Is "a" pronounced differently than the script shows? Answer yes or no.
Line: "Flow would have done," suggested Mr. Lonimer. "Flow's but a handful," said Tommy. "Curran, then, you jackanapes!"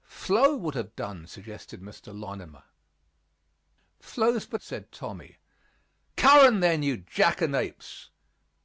yes